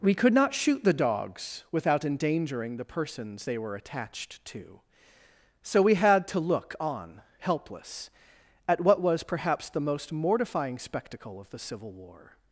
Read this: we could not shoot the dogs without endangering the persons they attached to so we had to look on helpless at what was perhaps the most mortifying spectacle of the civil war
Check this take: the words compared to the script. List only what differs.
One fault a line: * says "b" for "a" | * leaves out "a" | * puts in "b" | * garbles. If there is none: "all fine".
* puts in "were"